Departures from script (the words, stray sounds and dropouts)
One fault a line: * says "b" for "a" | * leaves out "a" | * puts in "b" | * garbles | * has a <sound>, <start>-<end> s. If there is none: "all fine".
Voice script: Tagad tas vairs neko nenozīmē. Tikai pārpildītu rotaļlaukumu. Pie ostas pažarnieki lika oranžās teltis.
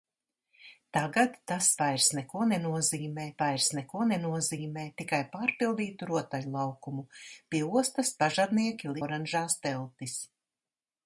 * puts in "vairs neko nenozīmē"
* leaves out "lika"